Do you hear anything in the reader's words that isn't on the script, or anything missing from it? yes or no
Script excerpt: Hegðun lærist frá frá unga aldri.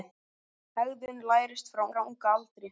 no